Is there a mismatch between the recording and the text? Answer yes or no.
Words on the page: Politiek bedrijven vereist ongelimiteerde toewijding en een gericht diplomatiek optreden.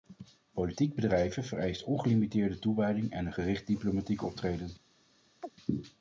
no